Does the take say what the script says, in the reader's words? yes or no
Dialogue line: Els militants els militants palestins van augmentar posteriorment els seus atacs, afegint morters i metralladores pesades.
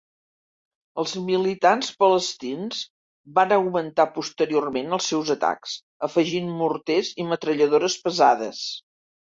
no